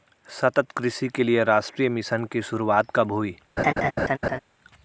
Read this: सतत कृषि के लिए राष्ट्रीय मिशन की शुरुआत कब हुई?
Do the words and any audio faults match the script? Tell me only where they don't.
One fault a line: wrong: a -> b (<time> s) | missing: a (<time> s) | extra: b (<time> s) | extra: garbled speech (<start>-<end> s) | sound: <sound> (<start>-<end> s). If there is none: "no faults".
sound: laugh (3.6-4.4 s)